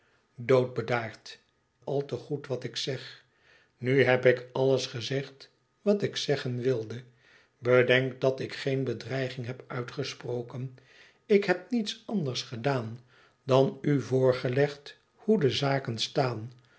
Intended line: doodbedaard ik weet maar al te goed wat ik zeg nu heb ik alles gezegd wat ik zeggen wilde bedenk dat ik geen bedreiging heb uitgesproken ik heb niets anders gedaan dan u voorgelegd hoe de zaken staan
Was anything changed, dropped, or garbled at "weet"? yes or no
yes